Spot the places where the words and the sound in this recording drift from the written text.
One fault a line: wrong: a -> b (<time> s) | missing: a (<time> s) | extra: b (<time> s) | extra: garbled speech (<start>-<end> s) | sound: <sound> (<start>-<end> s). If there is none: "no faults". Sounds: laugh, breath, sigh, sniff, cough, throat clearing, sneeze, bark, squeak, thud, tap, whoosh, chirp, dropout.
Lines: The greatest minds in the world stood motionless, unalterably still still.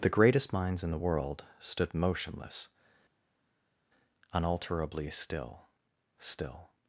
no faults